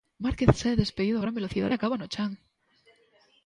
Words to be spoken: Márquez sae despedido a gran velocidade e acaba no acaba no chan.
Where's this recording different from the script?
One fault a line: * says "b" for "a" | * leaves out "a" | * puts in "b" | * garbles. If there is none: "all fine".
* leaves out "acaba no"